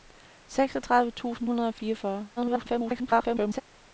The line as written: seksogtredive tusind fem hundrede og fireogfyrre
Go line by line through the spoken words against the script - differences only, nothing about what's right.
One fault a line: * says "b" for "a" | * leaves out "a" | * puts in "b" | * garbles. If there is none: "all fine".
* leaves out "fem"
* garbles